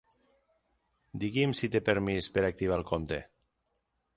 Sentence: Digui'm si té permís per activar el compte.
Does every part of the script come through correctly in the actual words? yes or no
yes